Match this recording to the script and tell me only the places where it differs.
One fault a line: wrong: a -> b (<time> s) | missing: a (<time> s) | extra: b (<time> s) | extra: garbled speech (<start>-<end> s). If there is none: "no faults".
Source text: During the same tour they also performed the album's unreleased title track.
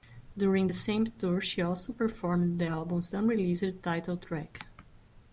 wrong: they -> she (1.4 s)